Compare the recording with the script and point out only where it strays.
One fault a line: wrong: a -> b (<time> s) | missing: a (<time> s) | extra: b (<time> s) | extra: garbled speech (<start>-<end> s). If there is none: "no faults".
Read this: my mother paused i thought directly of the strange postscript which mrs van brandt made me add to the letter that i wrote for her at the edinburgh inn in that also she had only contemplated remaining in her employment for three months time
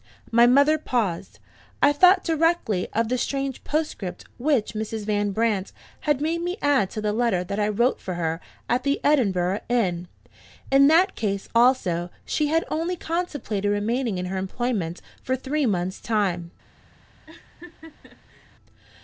extra: had (6.0 s)
extra: case (11.2 s)